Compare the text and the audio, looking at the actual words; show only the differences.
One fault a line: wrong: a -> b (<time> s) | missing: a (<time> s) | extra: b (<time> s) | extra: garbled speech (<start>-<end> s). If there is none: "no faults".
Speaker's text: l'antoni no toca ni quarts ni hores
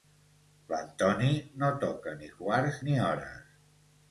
no faults